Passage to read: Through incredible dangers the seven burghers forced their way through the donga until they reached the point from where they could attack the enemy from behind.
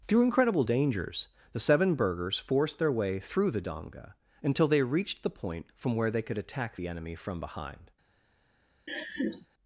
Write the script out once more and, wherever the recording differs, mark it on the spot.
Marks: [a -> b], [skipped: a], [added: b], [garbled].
Through incredible dangers the seven burghers forced their way through the donga until they reached the point from where they could attack the enemy from behind.